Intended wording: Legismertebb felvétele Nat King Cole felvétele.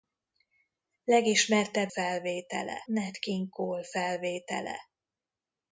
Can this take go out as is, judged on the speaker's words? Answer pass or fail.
pass